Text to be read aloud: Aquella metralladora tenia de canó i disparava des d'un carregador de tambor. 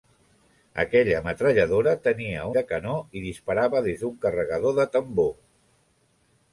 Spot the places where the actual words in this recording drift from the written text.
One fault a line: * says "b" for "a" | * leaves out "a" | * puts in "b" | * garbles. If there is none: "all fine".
all fine